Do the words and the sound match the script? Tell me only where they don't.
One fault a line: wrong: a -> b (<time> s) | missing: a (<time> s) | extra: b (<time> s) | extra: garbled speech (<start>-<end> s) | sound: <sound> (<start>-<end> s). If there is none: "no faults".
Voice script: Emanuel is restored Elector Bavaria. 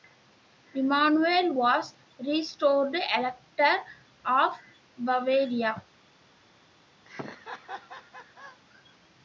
wrong: is -> was (1.5 s)
extra: of (4.2 s)
sound: laugh (7.1-8.6 s)